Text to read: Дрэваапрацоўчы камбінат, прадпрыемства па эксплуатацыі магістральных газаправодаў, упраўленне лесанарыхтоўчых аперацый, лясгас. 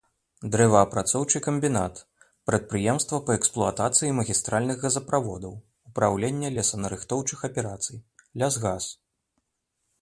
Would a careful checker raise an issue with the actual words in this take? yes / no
no